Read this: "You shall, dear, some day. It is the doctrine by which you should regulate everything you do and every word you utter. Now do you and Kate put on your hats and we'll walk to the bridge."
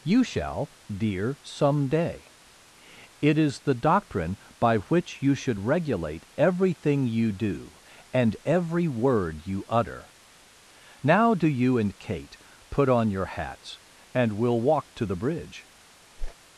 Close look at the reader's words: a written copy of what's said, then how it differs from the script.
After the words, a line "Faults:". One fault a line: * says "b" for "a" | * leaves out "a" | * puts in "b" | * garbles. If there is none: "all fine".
"You shall, dear, some day. It is the doctrine by which you should regulate everything you do and every word you utter. Now do you and Kate put on your hats and we'll walk to the bridge."
Faults:
all fine